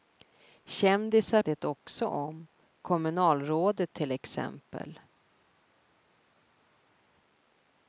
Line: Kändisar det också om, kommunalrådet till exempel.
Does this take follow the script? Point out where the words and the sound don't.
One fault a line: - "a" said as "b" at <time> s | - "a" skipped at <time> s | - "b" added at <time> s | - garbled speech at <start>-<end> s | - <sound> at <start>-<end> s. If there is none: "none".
none